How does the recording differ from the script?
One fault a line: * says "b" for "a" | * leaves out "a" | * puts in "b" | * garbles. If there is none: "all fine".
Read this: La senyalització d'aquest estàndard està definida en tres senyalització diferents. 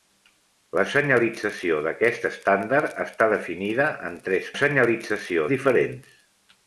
all fine